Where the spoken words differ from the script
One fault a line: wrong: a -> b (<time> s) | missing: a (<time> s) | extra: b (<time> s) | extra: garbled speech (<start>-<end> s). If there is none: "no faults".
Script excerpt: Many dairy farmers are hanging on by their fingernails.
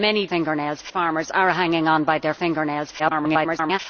wrong: dairy -> fingernails (0.2 s)
extra: garbled speech (3.0-3.8 s)